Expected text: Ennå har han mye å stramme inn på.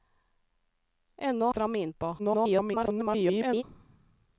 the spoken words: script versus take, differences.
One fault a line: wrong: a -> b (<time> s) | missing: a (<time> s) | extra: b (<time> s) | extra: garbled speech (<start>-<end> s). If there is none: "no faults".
missing: har han mye (1.5 s)
extra: garbled speech (2.2-3.6 s)